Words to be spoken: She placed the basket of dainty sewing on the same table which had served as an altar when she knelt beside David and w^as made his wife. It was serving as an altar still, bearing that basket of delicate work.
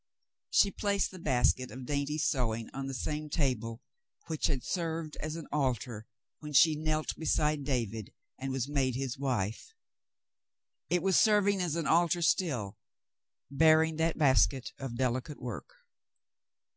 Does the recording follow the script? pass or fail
pass